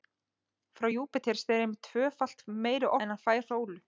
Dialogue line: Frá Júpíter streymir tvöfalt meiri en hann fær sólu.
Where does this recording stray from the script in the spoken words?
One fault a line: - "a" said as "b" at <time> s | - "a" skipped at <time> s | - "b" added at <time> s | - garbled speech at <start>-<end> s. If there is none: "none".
none